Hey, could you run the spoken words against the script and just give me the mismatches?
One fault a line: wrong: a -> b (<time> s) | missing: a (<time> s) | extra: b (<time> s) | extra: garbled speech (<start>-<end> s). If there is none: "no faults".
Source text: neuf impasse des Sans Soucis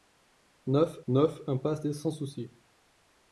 extra: neuf (1.1 s)